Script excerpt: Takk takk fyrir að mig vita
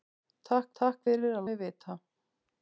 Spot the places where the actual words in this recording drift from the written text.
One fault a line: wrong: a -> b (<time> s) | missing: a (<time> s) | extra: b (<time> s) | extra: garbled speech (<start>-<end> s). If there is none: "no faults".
no faults